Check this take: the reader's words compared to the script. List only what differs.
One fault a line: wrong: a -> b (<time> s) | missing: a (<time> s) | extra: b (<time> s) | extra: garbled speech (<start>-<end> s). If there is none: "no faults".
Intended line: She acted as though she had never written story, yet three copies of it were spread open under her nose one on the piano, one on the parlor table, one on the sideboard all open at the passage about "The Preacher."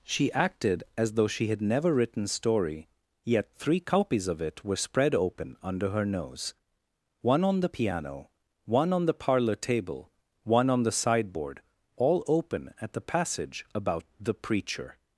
no faults